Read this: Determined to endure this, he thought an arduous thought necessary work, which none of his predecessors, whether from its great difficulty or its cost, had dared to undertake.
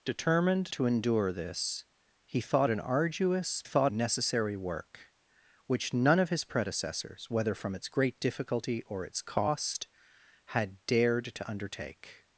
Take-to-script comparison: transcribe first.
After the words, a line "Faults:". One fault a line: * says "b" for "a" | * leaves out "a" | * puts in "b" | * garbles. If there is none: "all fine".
Determined to endure this, he thought an arduous thought necessary work, which none of his predecessors, whether from its great difficulty or its cost, had dared to undertake.
Faults:
all fine